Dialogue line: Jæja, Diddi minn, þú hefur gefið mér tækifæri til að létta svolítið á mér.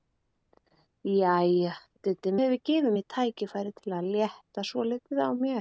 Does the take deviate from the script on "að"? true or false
false